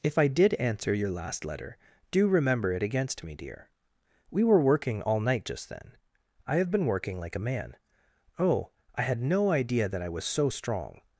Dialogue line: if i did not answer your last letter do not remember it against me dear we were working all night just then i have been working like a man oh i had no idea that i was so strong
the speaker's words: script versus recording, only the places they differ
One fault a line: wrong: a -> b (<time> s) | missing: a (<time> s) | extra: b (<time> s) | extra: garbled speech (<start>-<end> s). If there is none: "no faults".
missing: not (0.6 s)
missing: not (2.3 s)